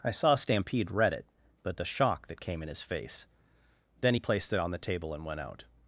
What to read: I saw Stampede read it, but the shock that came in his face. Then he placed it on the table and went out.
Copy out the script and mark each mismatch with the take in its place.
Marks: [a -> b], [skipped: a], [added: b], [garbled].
I saw Stampede read it, but the shock that came in his face. Then he placed it on the table and went out.